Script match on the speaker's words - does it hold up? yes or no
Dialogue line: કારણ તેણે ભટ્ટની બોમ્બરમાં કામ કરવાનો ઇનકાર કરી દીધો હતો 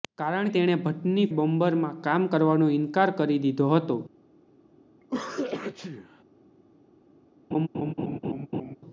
yes